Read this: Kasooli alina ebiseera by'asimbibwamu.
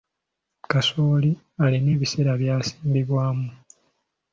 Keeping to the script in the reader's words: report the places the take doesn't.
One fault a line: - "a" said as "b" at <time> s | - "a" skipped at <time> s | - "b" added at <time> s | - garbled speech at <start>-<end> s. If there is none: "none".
none